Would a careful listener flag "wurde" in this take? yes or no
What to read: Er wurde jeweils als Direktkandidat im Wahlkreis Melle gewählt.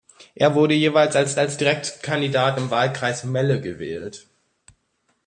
no